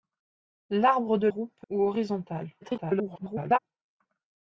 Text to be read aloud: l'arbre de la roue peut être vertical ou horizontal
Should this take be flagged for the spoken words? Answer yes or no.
yes